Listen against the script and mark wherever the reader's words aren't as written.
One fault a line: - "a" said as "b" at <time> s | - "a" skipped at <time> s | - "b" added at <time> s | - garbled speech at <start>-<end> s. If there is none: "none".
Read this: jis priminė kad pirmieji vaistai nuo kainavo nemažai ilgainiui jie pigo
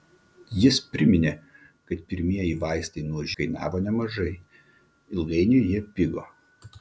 none